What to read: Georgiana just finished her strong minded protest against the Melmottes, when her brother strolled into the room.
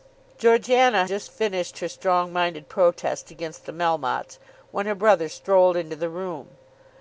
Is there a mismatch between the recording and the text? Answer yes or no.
no